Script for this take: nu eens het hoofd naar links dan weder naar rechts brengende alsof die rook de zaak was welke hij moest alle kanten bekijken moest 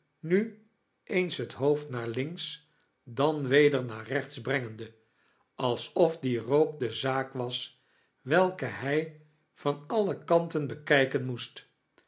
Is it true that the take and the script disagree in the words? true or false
true